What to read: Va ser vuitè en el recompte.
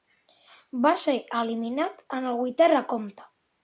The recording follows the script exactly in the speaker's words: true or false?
false